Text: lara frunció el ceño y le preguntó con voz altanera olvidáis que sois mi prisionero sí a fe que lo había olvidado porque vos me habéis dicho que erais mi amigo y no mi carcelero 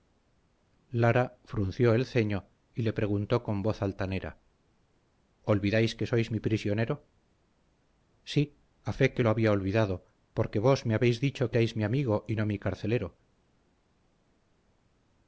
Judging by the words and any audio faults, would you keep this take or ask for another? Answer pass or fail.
fail